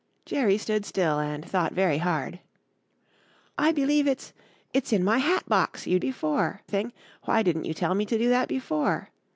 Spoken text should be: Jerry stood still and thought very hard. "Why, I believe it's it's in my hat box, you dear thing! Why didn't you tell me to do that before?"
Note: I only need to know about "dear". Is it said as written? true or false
false